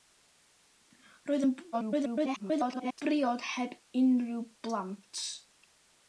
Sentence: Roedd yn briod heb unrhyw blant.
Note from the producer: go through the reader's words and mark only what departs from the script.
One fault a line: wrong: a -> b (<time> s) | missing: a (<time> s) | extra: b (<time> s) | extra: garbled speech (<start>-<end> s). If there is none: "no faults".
extra: garbled speech (1.7-3.0 s)